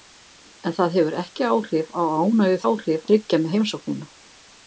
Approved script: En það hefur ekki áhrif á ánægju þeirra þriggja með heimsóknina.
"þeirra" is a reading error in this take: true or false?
true